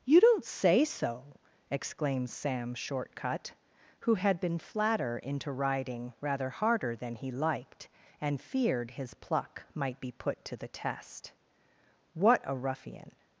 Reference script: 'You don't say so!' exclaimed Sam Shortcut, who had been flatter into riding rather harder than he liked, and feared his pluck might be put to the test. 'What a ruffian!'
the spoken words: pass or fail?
pass